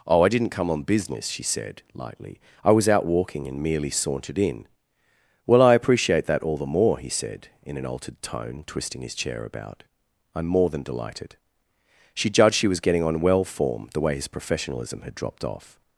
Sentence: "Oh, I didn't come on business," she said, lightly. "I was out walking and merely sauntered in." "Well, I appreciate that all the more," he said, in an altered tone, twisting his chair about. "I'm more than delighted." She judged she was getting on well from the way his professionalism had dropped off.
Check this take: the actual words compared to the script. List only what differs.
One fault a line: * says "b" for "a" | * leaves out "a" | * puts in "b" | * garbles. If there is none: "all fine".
* says "form" for "from"